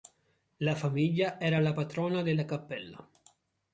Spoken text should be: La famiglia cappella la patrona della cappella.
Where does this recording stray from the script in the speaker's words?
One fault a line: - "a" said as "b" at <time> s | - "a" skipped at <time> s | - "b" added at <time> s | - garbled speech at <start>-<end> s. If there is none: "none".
- "cappella" said as "era" at 1.4 s